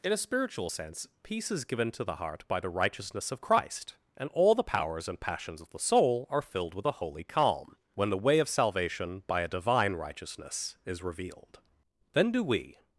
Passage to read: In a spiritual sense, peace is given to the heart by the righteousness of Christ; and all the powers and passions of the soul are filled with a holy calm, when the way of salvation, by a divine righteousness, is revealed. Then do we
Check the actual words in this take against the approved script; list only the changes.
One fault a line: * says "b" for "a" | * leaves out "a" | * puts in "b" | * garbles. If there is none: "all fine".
all fine